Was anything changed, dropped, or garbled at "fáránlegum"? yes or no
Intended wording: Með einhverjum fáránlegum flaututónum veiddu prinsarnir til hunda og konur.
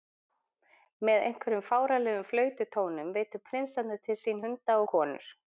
no